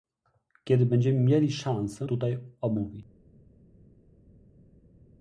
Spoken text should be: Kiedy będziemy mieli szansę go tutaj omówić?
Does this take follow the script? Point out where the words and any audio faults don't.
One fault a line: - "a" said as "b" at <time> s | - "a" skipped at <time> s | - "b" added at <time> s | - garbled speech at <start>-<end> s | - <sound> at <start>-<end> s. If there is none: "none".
- "go" skipped at 2.1 s